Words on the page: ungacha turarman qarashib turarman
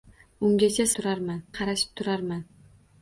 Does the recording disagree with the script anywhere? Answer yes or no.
no